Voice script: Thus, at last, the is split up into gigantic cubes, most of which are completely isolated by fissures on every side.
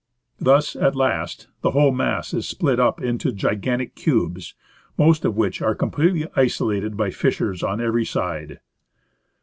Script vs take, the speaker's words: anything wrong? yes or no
yes